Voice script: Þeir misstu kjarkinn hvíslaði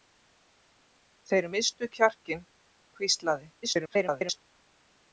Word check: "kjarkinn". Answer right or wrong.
right